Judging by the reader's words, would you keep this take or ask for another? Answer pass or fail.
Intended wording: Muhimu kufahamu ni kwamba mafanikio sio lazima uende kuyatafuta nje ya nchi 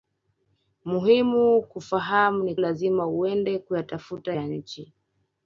fail